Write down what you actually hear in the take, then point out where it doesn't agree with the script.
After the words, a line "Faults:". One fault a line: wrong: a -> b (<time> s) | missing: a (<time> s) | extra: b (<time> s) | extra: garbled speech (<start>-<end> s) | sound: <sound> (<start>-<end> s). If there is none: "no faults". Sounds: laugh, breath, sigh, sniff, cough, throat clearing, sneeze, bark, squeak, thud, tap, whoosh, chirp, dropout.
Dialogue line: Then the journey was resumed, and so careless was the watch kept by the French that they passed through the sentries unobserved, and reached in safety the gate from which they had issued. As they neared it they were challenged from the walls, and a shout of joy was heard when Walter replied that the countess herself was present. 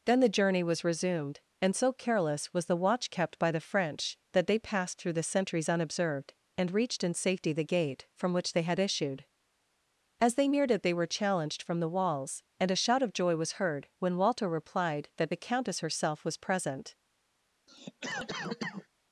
Then the journey was resumed, and so careless was the watch kept by the French that they passed through the sentries unobserved, and reached in safety the gate from which they had issued. As they neared it they were challenged from the walls, and a shout of joy was heard when Walter replied that the countess herself was present.
Faults:
sound: cough (17.7-18.9 s)